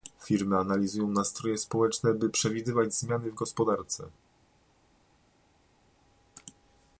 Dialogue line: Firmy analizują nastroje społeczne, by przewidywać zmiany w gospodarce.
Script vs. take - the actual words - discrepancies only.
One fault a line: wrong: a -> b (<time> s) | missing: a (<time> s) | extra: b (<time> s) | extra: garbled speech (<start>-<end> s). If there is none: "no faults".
no faults